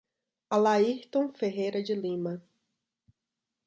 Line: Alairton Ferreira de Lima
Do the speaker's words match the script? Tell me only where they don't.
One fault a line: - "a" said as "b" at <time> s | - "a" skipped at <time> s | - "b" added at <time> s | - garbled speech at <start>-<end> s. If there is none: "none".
none